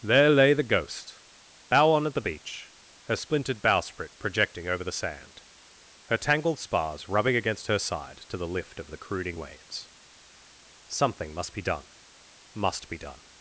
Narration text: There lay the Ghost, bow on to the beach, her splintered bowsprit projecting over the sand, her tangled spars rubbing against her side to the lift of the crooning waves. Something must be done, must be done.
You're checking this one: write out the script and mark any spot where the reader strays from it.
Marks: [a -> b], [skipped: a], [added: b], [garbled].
There lay the Ghost, bow on [to -> at] the beach, her splintered bowsprit projecting over the sand, her tangled spars rubbing against her side to the lift of the crooning waves. Something must be done, must be done.